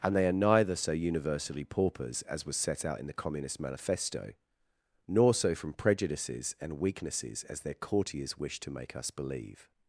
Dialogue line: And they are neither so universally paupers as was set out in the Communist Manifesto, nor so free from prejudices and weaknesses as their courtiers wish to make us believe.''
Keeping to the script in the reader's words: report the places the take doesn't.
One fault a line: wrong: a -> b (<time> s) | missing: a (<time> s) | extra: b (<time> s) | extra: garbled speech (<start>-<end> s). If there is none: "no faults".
missing: free (5.5 s)